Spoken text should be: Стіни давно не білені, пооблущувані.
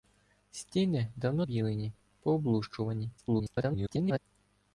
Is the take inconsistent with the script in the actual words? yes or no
yes